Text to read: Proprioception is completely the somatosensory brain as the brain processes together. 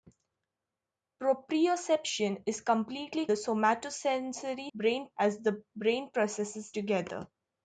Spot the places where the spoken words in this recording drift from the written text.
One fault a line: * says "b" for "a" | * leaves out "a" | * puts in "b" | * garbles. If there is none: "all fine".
all fine